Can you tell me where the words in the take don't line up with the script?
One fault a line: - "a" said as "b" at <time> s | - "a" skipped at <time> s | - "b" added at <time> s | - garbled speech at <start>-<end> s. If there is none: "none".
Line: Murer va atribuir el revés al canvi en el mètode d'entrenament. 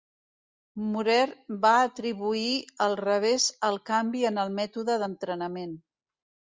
none